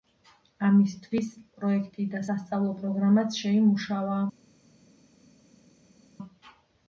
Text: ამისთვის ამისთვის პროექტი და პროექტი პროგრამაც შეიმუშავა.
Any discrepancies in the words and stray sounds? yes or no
yes